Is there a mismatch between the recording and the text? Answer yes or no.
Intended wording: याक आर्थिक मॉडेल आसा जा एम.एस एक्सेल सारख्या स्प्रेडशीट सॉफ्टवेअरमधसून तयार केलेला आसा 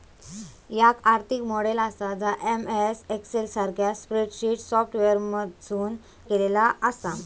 yes